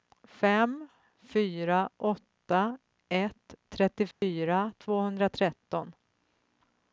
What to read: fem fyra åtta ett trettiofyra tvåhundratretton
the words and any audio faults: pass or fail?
fail